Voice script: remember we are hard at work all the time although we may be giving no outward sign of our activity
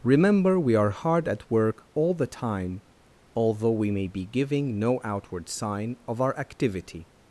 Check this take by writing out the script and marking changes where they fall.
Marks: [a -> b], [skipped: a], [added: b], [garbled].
remember we are hard at work all the time although we may be giving no outward sign of our activity